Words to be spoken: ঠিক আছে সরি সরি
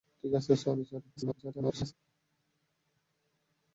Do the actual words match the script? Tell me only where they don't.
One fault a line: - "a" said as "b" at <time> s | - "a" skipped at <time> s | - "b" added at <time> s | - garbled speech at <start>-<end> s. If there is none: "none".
- garbled speech at 1.2-1.9 s